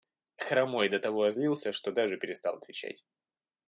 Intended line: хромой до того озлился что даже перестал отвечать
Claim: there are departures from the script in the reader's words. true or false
false